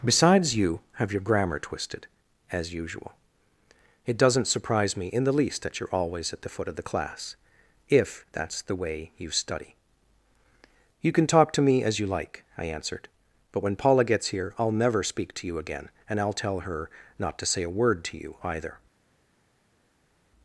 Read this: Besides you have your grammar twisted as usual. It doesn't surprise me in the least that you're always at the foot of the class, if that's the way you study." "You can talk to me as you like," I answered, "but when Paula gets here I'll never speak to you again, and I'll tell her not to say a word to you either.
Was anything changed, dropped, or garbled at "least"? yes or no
no